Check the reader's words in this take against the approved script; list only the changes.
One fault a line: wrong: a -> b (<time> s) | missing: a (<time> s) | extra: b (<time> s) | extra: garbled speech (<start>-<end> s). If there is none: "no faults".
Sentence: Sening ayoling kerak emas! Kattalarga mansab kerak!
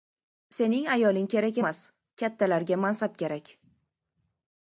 no faults